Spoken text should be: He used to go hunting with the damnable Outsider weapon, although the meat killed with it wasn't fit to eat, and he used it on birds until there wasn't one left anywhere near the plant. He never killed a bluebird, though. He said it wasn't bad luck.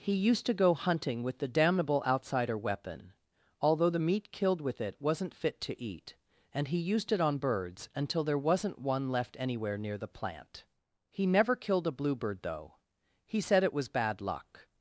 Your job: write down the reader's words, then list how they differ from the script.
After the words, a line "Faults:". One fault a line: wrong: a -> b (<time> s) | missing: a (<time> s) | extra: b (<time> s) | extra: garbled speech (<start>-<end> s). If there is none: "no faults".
He used to go hunting with the damnable Outsider weapon, although the meat killed with it wasn't fit to eat, and he used it on birds until there wasn't one left anywhere near the plant. He never killed a bluebird, though. He said it was bad luck.
Faults:
wrong: wasn't -> was (13.7 s)